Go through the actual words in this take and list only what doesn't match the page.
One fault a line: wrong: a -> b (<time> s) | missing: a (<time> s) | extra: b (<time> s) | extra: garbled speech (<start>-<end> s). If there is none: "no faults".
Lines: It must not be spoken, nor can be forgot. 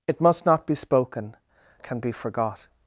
missing: nor (1.4 s)